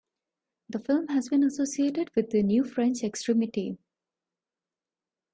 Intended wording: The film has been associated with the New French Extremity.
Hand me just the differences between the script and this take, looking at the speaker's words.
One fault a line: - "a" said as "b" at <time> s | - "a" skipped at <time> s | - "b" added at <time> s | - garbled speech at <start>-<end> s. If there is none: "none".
none